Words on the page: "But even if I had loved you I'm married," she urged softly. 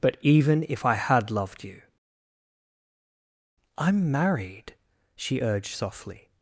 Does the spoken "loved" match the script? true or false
true